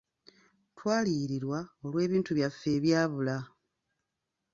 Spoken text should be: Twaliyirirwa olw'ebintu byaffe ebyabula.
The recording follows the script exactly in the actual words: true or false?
true